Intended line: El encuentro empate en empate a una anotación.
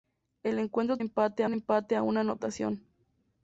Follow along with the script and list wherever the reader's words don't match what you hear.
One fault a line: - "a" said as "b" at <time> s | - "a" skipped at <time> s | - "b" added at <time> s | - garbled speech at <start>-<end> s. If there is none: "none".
none